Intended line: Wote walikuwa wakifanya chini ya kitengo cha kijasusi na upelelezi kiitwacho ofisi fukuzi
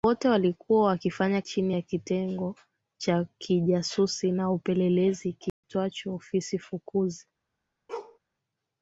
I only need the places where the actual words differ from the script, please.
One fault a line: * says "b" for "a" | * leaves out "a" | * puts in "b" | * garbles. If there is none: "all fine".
all fine